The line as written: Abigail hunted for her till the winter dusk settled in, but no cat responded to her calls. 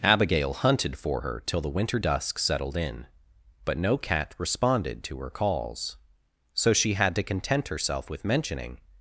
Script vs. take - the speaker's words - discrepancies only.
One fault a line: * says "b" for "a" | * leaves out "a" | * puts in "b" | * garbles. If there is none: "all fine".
* puts in "So she had to content herself with mentioning"